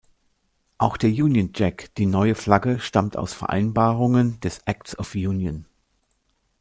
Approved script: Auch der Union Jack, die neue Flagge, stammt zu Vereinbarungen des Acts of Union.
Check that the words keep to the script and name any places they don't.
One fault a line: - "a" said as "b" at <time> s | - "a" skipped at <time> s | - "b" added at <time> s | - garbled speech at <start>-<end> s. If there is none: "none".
- "zu" said as "aus" at 3.2 s